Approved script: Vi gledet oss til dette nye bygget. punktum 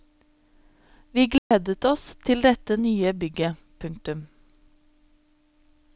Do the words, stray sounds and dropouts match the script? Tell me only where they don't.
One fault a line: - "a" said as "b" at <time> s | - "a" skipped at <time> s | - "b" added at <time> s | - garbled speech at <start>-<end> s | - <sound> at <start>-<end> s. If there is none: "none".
- dropout at 1.4-1.5 s